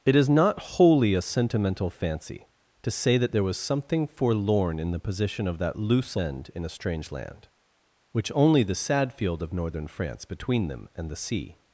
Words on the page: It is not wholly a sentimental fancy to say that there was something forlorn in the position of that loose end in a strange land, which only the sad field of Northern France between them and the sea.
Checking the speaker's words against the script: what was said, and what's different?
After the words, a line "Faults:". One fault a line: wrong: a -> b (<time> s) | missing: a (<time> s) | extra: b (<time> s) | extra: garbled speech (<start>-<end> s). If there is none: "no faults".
It is not wholly a sentimental fancy to say that there was something forlorn in the position of that loose end in a strange land, which only the sad field of Northern France between them and the sea.
Faults:
no faults